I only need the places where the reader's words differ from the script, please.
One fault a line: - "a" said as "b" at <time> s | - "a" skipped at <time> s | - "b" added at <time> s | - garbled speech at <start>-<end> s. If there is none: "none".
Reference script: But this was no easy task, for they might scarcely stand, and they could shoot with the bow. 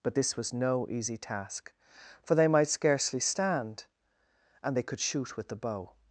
none